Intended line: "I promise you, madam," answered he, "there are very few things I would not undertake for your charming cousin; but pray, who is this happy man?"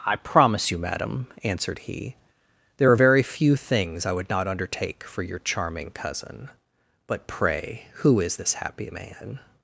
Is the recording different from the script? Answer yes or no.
no